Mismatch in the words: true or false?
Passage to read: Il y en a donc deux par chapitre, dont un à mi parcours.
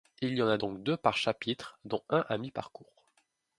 false